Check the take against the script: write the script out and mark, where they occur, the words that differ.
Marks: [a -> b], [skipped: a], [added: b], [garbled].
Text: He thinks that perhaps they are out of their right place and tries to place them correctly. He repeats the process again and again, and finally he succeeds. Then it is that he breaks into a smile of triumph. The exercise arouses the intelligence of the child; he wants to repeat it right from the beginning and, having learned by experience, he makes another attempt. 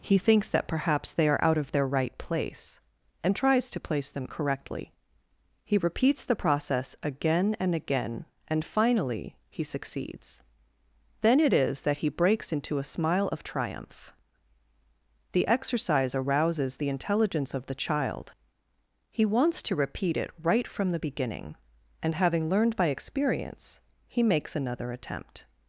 He thinks that perhaps they are out of their right place and tries to place them correctly. He repeats the process again and again, and finally he succeeds. Then it is that he breaks into a smile of triumph. The exercise arouses the intelligence of the child; he wants to repeat it right from the beginning and, having learned by experience, he makes another attempt.